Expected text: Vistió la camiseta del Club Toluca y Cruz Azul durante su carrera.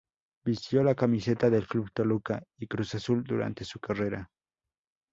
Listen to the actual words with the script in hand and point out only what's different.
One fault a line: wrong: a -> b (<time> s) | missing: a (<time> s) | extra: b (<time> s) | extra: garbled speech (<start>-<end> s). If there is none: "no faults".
no faults